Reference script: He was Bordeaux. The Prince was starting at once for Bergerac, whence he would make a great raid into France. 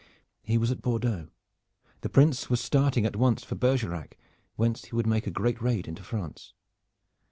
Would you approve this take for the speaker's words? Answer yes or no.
no